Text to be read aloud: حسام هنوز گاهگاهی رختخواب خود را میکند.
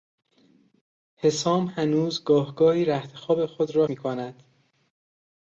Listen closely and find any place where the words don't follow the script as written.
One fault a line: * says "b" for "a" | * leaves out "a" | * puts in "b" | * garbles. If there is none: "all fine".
all fine